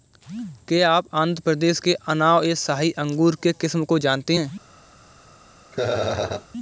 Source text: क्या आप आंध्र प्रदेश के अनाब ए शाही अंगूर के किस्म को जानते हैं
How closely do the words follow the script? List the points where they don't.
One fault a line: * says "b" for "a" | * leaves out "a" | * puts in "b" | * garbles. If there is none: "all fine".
all fine